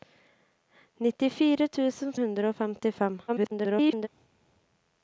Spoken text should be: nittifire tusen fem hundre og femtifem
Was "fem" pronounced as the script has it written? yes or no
no